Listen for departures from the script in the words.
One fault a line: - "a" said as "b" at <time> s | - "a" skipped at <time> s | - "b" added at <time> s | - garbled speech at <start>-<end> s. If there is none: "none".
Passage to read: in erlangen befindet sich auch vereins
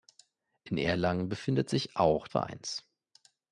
none